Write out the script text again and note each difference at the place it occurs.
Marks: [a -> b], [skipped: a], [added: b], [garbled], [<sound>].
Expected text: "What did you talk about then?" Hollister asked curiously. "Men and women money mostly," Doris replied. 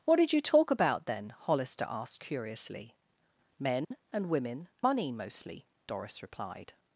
"What did you talk about then?" Hollister asked curiously. "Men [dropout] and women money mostly," Doris replied.